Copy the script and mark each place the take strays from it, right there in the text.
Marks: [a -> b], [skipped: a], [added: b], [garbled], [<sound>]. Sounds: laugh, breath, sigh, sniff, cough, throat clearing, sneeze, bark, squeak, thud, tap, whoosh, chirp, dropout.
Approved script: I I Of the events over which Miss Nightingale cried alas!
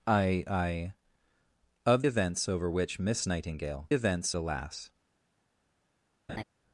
I I Of [skipped: the] events over which Miss Nightingale [cried -> events] alas! [laugh]